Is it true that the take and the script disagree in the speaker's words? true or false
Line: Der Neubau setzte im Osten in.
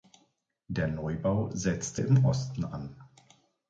true